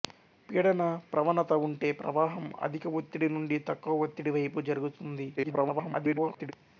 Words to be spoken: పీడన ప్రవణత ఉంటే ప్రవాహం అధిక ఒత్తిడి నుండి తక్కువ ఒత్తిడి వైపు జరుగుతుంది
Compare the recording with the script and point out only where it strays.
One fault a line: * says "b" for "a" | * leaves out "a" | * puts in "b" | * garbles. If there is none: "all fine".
* garbles